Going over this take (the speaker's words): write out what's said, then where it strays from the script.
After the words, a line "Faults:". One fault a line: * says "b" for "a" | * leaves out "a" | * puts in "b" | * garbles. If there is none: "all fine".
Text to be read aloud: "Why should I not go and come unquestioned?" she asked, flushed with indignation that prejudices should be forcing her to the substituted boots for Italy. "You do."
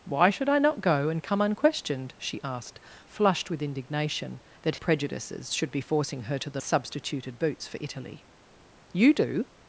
"Why should I not go and come unquestioned?" she asked, flushed with indignation that prejudices should be forcing her to the substituted boots for Italy. "You do."
Faults:
all fine